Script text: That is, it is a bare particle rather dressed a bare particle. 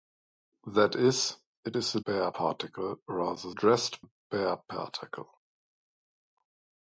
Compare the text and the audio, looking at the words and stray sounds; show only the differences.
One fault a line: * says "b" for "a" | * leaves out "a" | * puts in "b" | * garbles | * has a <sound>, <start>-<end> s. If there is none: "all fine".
all fine